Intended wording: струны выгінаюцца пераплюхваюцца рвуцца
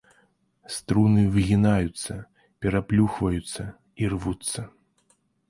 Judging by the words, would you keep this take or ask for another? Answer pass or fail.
fail